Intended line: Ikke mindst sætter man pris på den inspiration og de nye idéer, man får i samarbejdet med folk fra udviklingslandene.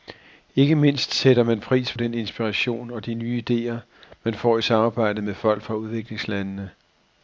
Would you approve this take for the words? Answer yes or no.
no